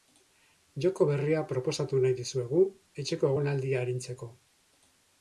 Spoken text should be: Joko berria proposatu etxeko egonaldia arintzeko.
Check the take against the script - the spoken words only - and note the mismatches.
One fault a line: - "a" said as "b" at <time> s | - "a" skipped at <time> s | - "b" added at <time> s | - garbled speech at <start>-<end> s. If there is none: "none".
- "nahi dizuegu" added at 2.0 s